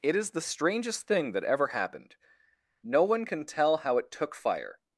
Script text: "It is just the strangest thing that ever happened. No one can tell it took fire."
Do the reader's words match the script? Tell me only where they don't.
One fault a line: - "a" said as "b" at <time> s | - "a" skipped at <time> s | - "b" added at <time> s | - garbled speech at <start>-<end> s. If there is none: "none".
- "just" skipped at 0.3 s
- "how" added at 3.8 s